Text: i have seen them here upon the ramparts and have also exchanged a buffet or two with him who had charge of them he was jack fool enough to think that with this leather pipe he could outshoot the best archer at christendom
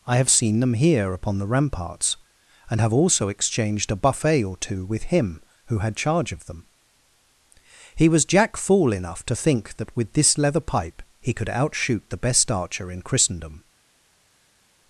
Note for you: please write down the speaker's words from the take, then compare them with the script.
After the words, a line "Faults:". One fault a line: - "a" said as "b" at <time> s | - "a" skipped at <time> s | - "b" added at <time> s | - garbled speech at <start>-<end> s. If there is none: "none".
i have seen them here upon the ramparts and have also exchanged a buffet or two with him who had charge of them he was jack fool enough to think that with this leather pipe he could outshoot the best archer in christendom
Faults:
- "at" said as "in" at 12.9 s